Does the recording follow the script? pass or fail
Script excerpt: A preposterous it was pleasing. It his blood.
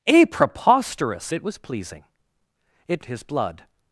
pass